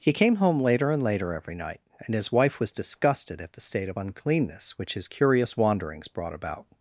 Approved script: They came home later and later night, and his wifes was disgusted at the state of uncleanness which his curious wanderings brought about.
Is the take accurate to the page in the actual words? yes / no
no